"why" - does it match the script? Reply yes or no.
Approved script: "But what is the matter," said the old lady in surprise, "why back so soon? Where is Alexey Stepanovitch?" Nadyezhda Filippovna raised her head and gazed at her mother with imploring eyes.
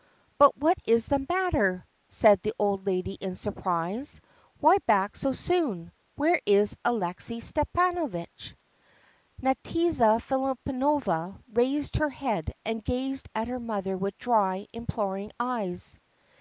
yes